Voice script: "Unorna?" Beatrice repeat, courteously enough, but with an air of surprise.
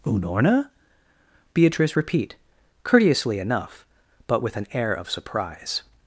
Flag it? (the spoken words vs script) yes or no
no